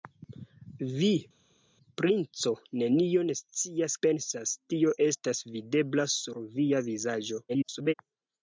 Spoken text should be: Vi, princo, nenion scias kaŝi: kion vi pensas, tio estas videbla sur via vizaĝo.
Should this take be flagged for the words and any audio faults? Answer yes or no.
yes